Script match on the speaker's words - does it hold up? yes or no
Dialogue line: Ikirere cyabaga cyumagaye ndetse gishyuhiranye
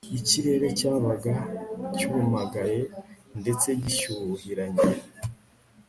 yes